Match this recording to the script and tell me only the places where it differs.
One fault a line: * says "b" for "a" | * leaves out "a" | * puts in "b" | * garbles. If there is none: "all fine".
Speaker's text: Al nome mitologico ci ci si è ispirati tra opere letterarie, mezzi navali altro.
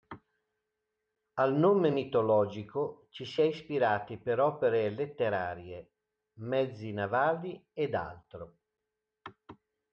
* leaves out "ci"
* says "per" for "tra"
* puts in "ed"